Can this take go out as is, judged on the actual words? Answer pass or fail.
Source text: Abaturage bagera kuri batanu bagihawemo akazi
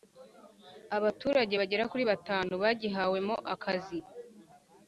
pass